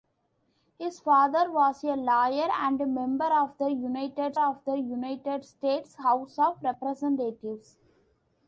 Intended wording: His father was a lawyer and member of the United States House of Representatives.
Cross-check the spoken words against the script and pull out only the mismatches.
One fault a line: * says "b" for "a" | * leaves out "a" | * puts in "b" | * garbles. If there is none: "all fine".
* puts in "of the United"